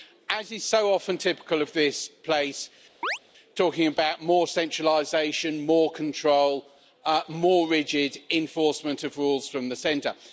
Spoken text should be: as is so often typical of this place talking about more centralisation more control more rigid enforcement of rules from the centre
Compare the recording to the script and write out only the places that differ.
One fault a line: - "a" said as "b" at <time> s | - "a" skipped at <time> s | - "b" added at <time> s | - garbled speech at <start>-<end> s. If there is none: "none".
none